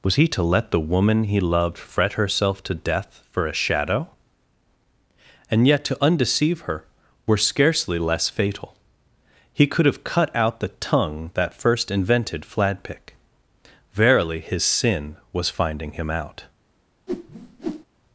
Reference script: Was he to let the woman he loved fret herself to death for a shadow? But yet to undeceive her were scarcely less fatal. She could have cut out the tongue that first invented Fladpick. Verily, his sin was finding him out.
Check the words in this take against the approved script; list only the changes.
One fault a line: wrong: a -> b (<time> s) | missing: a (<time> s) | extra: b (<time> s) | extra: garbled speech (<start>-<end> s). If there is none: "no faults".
wrong: But -> And (5.5 s)
wrong: She -> He (9.5 s)